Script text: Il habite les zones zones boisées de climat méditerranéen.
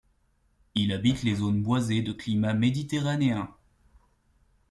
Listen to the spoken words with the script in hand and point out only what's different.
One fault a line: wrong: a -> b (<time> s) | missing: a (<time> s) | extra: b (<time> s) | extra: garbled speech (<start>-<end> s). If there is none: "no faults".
missing: zones (1.6 s)